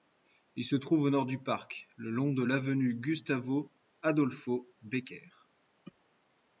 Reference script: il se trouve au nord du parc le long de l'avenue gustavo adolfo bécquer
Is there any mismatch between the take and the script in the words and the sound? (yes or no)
no